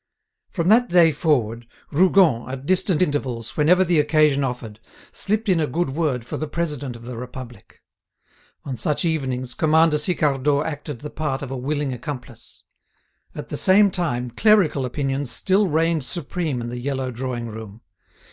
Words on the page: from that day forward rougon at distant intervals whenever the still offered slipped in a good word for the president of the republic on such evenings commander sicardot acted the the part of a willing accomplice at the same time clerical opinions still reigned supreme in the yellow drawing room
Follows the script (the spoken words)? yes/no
no